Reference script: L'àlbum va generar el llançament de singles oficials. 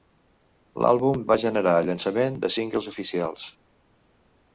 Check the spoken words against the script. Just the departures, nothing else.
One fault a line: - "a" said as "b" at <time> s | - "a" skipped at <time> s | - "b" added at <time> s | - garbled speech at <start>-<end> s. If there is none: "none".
none